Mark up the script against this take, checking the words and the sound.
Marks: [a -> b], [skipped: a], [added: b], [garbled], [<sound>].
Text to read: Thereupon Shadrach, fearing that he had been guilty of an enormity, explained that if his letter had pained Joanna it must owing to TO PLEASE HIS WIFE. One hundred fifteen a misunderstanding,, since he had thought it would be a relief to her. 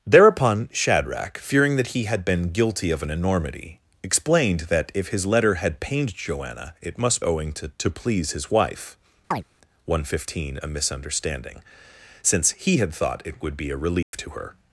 Thereupon Shadrach, fearing that he had been guilty of an enormity, explained that if his letter had pained Joanna it must owing to TO PLEASE HIS WIFE. [chirp] One hundred fifteen a misunderstanding,, since he had thought it would be a relief [dropout] to her.